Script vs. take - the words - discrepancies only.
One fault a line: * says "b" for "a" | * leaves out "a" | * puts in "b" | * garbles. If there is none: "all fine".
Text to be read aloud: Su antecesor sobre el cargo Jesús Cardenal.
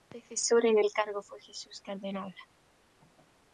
* says "en" for "sobre"
* puts in "fue"